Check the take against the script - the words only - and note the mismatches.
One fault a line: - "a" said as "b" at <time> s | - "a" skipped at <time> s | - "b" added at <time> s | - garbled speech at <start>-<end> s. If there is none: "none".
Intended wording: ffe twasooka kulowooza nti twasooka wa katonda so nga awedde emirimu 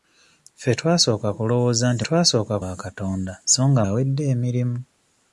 none